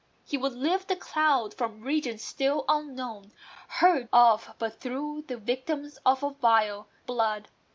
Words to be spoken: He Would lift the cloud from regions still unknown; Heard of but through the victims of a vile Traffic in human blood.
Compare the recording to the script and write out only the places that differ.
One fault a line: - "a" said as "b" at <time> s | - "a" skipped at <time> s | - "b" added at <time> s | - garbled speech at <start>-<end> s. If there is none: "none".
- "Traffic in human" skipped at 6.9 s